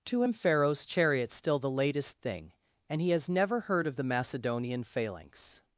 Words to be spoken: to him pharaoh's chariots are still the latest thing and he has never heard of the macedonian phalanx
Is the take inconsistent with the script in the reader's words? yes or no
yes